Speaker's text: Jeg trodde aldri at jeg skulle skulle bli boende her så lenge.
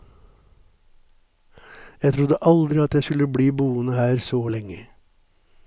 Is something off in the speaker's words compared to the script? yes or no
yes